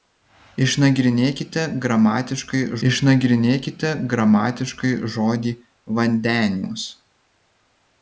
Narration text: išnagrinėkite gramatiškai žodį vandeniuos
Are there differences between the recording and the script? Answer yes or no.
yes